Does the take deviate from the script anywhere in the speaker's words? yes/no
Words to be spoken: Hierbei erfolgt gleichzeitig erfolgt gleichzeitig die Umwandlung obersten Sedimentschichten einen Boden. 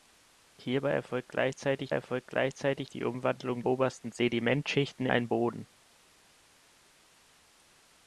no